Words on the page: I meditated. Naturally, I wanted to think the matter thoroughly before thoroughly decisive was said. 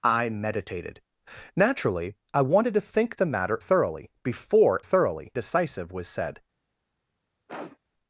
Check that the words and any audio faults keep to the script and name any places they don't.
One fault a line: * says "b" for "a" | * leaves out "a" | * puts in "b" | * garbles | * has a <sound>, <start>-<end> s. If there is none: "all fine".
* has a sniff, 7.5-7.8 s